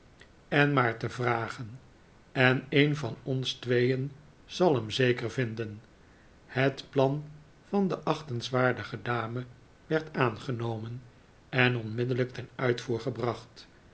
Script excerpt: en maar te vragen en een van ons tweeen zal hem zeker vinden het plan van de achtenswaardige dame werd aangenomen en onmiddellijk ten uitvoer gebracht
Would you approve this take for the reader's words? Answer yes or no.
yes